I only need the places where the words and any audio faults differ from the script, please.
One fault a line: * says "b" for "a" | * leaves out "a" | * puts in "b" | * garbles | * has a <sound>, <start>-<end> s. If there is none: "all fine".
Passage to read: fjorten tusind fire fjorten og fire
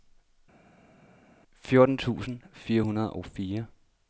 * says "hundrede" for "fjorten"